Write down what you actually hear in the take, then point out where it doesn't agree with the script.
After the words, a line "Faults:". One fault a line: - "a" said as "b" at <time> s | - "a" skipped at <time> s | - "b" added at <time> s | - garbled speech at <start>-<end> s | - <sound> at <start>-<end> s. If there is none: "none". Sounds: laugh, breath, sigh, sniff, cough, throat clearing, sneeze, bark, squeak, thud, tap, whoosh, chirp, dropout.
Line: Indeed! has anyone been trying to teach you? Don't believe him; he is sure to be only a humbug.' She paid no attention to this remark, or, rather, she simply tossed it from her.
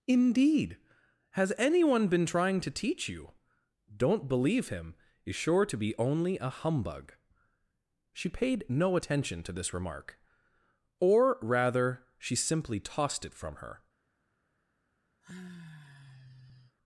Indeed! has anyone been trying to teach you? Don't believe him; is sure to be only a humbug.' She paid no attention to this remark, or, rather, she simply tossed it from her.
Faults:
- "he" skipped at 5.0 s
- sigh at 15.2-16.8 s